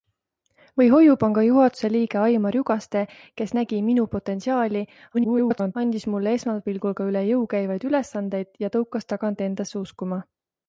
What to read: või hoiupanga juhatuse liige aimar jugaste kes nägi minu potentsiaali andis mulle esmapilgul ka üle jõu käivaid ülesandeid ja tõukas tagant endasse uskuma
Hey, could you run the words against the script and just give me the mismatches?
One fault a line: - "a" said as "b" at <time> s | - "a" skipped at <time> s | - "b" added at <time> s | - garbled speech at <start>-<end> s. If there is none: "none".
- garbled speech at 5.1-5.8 s